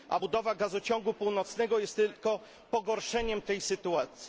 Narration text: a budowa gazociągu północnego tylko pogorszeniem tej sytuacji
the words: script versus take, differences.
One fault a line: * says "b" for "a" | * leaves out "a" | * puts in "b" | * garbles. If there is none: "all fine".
* puts in "jest"